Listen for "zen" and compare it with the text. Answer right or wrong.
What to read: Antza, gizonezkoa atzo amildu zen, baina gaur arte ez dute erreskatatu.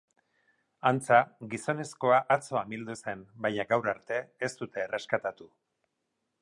right